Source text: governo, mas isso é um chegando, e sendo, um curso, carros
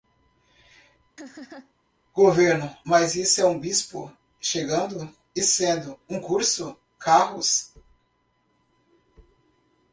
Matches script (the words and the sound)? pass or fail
fail